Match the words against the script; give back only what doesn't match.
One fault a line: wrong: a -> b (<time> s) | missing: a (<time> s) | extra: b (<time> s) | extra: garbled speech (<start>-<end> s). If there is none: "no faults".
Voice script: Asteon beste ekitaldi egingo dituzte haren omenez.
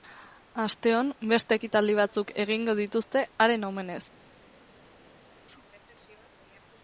extra: batzuk (2.0 s)